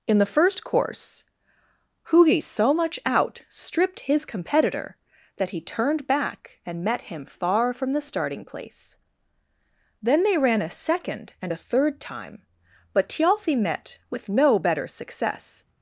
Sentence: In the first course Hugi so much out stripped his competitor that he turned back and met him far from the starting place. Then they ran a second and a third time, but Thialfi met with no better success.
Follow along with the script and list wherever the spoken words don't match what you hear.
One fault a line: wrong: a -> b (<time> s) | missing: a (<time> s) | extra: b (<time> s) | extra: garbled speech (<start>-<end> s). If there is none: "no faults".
no faults